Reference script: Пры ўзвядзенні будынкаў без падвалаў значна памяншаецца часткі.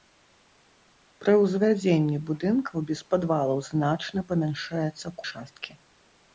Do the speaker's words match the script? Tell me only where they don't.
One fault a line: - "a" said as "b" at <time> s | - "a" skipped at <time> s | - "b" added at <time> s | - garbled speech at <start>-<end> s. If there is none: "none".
none